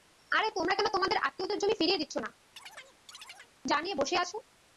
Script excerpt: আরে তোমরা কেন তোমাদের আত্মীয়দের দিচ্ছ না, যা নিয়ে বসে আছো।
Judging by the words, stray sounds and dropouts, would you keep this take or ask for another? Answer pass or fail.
fail